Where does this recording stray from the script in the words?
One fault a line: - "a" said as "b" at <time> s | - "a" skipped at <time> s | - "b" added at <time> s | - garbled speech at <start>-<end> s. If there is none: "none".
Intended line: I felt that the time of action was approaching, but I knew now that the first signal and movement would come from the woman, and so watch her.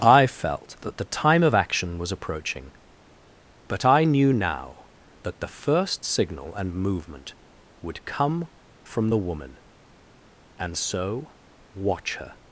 none